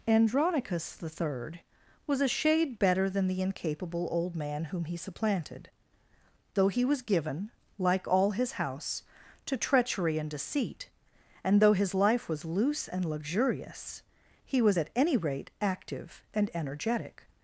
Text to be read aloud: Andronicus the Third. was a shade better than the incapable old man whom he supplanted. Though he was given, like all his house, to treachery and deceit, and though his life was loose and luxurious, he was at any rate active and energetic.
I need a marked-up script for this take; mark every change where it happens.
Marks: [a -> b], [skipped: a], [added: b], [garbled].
Andronicus the Third. was a shade better than the incapable old man whom he supplanted. Though he was given, like all his house, to treachery and deceit, and though his life was loose and luxurious, he was at any rate active and energetic.